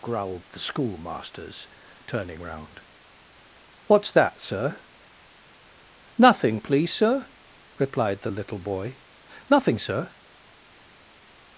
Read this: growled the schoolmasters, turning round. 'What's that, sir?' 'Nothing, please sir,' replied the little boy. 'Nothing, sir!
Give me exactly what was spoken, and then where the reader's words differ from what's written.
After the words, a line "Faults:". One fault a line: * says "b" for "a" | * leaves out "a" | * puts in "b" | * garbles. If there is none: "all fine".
growled the schoolmasters, turning round. 'What's that, sir?' 'Nothing, please sir,' replied the little boy. 'Nothing, sir!
Faults:
all fine